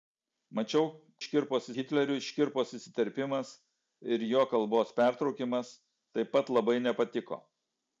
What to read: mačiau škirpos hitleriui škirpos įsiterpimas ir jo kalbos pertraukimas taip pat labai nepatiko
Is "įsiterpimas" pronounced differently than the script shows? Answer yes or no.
no